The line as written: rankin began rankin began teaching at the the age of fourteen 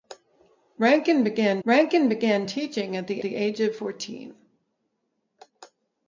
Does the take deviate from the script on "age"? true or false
false